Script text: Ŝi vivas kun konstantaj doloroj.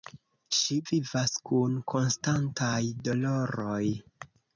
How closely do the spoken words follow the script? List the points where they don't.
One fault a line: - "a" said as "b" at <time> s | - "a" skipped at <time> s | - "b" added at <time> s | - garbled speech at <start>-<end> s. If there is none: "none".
none